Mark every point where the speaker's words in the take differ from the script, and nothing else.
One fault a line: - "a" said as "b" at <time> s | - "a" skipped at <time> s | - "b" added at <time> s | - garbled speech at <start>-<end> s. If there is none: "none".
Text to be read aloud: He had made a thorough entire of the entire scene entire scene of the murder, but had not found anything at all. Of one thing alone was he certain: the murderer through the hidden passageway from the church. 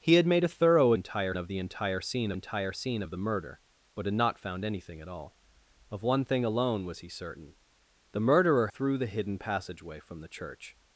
none